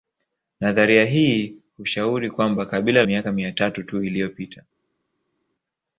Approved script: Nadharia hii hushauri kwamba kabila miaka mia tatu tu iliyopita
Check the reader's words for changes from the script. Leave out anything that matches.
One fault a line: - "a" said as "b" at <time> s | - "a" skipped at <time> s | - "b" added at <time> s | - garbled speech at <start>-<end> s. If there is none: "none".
none